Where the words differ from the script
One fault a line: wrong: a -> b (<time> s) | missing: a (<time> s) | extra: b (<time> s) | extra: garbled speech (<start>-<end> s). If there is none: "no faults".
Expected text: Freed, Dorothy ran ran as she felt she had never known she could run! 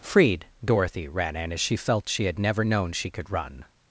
wrong: ran -> in (1.4 s)